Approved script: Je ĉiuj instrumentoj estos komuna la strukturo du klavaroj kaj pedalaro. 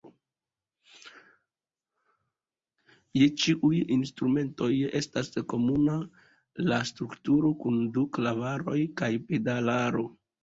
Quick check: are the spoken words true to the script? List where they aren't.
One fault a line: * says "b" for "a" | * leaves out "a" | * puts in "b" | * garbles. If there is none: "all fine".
* says "estas" for "estos"
* puts in "kun"